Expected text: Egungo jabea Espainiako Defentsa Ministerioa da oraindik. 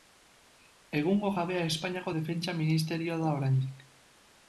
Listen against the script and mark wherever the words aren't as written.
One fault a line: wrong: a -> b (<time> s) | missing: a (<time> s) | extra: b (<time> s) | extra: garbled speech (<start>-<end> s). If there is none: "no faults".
no faults